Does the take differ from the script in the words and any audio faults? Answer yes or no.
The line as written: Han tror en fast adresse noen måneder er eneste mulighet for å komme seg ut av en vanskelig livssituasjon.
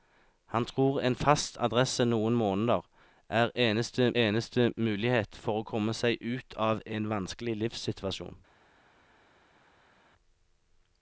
yes